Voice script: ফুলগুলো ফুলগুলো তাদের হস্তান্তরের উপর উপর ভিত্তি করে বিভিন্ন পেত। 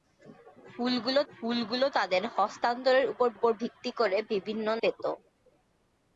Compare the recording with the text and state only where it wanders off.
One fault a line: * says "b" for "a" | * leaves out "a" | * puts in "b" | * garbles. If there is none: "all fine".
all fine